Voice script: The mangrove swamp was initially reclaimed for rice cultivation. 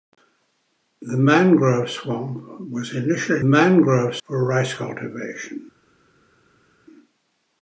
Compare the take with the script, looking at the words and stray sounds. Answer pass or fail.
fail